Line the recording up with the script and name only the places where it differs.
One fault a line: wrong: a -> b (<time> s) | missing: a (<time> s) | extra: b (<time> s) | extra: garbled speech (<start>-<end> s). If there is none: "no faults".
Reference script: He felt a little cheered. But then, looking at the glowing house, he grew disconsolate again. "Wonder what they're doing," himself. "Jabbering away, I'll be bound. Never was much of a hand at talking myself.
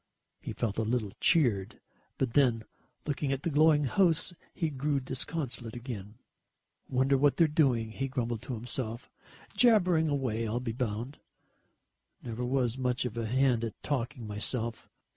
extra: he grumbled to (7.9 s)